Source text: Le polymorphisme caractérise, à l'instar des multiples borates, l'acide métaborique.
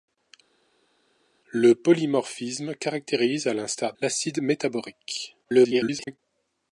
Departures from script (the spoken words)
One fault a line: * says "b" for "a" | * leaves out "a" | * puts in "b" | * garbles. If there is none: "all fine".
* leaves out "des multiples borates"
* garbles